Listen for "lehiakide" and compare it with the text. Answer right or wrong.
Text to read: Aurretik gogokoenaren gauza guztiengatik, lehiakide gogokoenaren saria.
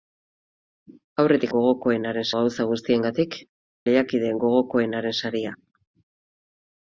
right